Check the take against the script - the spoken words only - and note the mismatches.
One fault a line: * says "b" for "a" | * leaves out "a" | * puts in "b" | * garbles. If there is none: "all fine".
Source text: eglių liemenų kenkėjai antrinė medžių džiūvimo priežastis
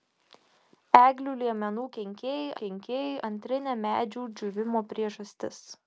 * puts in "kenkėjai"